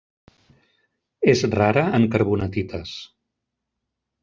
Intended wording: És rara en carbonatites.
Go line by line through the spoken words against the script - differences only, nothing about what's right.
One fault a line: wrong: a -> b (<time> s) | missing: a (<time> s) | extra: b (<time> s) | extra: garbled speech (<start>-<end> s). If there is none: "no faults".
no faults